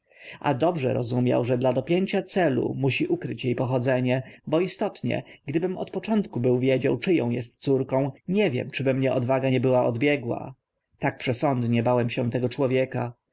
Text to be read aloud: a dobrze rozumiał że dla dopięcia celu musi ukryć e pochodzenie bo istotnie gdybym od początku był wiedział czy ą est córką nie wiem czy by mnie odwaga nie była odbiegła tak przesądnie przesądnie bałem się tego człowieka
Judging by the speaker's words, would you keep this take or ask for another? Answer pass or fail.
fail